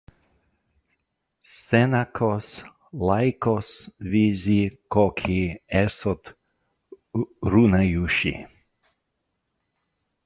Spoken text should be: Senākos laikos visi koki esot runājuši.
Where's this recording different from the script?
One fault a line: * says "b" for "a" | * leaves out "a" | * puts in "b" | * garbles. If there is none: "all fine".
all fine